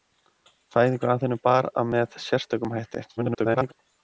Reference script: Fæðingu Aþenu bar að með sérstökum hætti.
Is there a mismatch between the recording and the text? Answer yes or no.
yes